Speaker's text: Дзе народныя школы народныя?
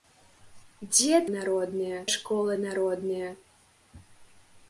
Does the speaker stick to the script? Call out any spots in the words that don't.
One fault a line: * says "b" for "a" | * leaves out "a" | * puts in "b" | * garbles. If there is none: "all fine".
all fine